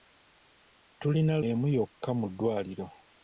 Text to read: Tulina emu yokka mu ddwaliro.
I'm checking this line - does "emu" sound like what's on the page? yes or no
yes